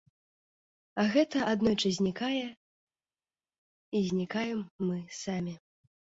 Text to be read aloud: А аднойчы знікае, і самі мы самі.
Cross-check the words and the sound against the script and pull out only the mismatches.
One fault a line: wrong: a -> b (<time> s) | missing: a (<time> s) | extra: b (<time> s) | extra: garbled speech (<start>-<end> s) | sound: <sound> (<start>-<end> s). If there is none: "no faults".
extra: гэта (1.1 s)
wrong: самі -> знікаем (4.1 s)